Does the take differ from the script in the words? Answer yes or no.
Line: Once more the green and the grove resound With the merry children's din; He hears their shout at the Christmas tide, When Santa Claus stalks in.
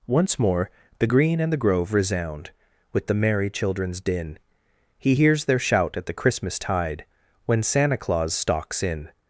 no